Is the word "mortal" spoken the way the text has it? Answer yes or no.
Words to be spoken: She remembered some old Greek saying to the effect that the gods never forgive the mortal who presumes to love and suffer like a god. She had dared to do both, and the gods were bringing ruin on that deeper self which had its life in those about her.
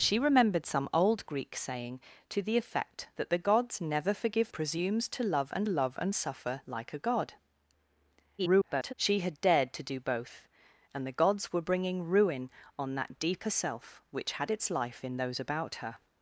no